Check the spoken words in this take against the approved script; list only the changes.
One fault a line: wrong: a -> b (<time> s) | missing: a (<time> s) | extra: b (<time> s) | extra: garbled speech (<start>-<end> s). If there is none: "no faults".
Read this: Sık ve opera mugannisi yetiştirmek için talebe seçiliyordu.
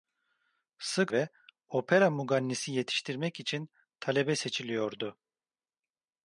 no faults